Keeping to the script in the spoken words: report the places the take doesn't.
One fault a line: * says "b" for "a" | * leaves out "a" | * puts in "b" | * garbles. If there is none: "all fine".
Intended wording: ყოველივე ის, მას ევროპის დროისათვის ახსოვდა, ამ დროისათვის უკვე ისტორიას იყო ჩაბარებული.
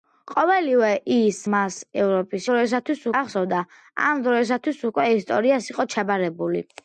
all fine